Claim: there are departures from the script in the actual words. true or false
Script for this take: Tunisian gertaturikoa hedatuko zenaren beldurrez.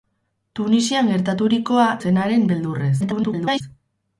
true